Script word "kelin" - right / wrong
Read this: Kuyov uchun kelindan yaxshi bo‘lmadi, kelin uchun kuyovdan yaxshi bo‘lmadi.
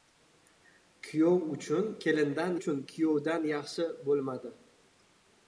wrong